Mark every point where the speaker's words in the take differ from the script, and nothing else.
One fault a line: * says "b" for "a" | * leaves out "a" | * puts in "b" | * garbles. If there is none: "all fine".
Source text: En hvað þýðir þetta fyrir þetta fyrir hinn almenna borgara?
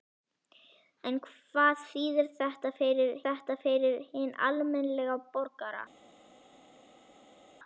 all fine